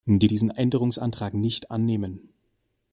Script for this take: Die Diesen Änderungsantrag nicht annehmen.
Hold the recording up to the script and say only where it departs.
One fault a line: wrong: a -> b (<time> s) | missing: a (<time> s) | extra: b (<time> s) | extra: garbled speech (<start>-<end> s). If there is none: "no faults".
no faults